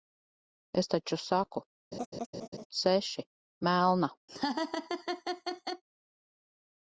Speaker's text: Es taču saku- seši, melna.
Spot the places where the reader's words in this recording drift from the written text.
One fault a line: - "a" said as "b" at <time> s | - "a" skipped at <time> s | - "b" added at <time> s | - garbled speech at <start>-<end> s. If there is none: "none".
none